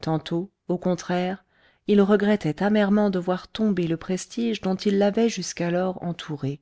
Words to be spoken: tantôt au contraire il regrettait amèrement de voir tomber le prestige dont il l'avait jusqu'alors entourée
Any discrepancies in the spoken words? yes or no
no